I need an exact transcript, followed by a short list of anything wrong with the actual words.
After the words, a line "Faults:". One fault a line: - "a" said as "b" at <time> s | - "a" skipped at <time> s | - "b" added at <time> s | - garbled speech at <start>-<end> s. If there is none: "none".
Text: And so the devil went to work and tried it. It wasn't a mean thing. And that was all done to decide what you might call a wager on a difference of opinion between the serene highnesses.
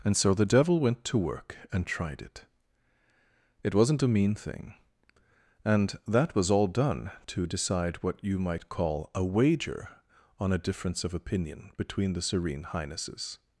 And so the devil went to work and tried it. It wasn't a mean thing. And that was all done to decide what you might call a wager on a difference of opinion between the serene highnesses.
Faults:
none